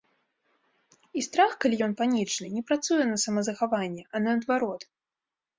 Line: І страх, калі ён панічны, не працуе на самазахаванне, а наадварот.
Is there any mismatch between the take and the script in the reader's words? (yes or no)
no